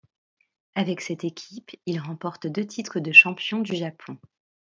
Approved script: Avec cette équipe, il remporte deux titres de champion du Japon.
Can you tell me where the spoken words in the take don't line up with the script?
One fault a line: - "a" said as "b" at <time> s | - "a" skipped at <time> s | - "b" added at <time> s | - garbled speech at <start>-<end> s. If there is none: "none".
none